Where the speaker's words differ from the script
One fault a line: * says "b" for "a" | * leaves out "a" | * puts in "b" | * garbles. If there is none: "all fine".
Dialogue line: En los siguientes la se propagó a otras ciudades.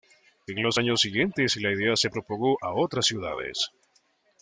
* puts in "años"
* puts in "idea"